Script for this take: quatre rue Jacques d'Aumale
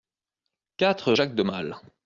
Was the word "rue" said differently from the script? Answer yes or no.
yes